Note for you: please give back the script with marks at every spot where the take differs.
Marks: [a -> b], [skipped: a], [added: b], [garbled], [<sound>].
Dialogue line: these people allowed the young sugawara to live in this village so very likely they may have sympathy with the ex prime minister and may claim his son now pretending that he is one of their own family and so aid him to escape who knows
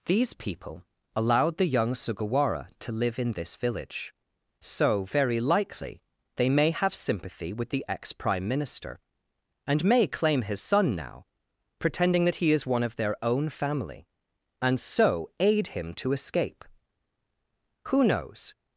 these people allowed the young sugawara to live in this village so very likely they may have sympathy with the ex prime minister and may claim his son now pretending that he is one of their own family and so aid him to escape who knows